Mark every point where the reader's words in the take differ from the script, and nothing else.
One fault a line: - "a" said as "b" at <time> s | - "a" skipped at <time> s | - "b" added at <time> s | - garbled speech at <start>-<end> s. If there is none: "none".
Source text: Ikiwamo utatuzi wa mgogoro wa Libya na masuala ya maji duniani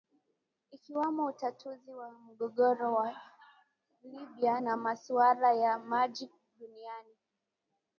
none